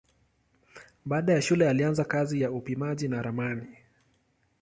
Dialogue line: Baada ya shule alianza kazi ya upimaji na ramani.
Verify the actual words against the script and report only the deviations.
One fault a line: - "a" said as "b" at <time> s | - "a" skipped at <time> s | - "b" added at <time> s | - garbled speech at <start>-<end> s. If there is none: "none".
none